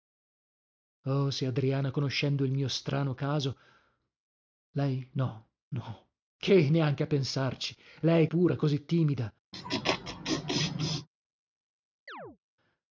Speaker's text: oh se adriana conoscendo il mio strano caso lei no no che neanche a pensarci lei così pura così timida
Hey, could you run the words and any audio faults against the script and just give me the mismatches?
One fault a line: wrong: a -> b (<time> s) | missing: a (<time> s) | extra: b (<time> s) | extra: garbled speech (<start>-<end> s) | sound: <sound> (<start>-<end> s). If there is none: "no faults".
missing: così (8.3 s)
sound: laugh (9.5-11.1 s)
sound: chirp (12.1-12.4 s)